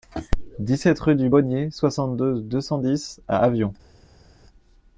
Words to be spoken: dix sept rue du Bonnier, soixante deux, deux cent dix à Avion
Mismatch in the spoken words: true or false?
false